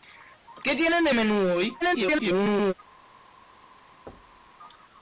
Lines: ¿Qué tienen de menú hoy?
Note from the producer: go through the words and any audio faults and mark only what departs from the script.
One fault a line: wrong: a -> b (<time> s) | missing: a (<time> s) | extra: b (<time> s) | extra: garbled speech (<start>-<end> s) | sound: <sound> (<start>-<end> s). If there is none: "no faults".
extra: garbled speech (1.8-2.7 s)
sound: thud (4.1-4.5 s)